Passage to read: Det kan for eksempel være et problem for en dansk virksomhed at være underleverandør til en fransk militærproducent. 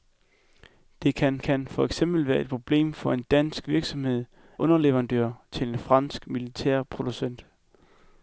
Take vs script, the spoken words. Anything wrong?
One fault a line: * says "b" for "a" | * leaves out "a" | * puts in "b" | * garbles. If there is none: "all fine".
* puts in "kan"
* leaves out "at være"